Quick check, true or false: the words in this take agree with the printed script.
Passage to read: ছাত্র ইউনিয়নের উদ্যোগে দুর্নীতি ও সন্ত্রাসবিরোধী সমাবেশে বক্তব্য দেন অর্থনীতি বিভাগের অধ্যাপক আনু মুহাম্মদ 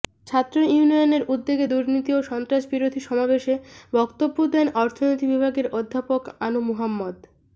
true